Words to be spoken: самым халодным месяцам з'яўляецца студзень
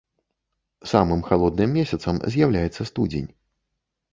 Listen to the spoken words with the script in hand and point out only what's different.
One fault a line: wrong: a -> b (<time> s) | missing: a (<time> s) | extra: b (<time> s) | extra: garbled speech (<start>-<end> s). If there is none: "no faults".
no faults